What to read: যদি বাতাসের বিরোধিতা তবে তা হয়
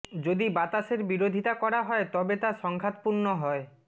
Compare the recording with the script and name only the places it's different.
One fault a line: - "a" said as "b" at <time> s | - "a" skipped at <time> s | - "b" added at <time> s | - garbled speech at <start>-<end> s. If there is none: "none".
- "করা হয়" added at 1.5 s
- "সংঘাতপূর্ণ" added at 2.6 s